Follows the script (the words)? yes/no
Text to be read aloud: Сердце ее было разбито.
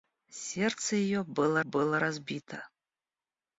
no